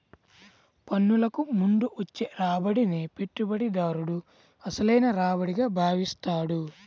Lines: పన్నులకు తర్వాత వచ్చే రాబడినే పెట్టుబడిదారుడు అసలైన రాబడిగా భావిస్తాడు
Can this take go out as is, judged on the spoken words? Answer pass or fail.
fail